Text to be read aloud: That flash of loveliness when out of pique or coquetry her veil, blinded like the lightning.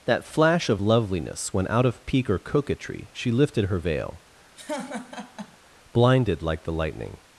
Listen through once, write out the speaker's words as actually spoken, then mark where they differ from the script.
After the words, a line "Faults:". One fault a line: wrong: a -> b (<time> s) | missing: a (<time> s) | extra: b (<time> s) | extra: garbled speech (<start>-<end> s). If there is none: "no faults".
That flash of loveliness when out of pique or coquetry she lifted her veil, blinded like the lightning.
Faults:
extra: she lifted (3.1 s)